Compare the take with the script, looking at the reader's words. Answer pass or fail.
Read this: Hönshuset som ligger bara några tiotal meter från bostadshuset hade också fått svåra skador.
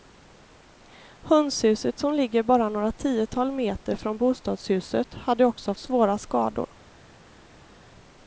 fail